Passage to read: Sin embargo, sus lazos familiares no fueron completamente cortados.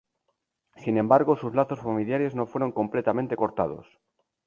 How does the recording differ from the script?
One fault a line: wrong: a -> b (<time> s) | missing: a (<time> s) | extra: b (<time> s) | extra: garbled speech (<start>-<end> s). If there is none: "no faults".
no faults